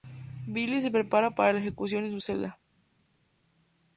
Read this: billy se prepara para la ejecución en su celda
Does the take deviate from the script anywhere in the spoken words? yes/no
no